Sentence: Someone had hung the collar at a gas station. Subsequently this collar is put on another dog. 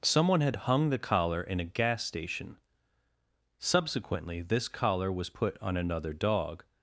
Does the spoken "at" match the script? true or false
false